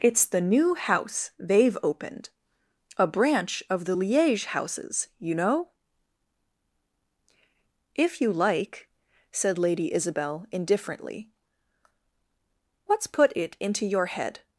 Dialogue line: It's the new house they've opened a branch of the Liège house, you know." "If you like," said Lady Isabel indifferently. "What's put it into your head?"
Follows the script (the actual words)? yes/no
no